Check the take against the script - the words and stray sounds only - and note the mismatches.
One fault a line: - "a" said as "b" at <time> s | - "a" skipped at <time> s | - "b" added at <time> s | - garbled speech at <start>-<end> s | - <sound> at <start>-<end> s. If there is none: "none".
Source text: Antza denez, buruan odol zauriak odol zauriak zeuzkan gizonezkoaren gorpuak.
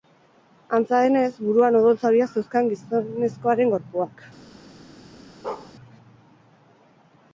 - "odol zauriak" skipped at 2.3 s
- bark at 5.4-5.7 s